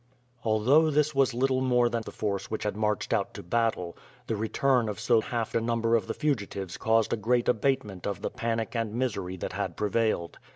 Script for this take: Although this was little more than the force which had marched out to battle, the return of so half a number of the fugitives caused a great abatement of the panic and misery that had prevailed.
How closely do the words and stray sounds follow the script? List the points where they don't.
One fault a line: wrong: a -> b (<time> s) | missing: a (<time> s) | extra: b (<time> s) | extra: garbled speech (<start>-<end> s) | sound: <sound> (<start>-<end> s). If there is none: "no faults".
no faults